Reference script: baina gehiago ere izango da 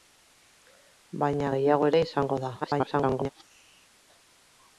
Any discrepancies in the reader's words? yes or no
yes